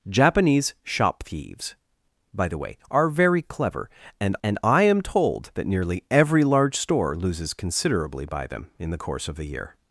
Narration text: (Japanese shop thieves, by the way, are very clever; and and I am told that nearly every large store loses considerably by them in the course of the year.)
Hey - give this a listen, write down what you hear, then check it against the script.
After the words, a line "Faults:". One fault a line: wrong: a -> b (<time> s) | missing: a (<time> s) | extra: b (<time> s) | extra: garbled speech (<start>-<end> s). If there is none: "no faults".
(Japanese shop thieves, by the way, are very clever; and and I am told that nearly every large store loses considerably by them in the course of the year.)
Faults:
no faults